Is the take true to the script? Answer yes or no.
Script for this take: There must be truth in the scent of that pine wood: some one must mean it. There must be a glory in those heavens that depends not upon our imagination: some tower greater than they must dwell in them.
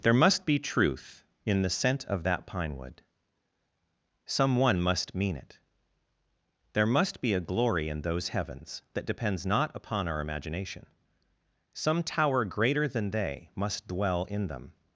yes